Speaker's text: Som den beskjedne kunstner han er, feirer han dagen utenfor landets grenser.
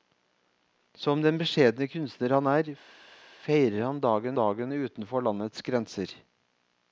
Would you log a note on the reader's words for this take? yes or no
yes